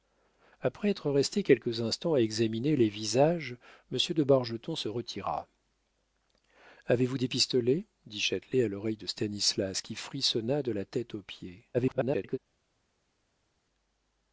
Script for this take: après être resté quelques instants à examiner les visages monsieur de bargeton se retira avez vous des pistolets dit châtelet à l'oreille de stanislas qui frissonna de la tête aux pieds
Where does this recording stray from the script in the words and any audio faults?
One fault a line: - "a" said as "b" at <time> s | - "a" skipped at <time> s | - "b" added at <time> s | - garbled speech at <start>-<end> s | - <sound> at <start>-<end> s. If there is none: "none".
- garbled speech at 11.7-12.4 s